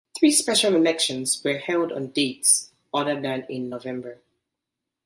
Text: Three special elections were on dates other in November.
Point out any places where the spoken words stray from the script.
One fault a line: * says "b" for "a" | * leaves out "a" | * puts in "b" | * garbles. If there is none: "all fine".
* puts in "held"
* puts in "than"